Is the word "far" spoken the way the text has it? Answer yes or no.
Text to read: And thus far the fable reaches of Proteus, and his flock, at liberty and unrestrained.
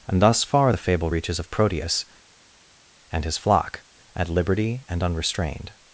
yes